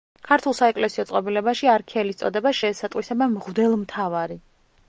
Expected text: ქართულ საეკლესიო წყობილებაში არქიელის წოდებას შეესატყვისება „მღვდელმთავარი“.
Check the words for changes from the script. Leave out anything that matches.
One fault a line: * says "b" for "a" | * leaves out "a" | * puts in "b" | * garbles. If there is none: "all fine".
all fine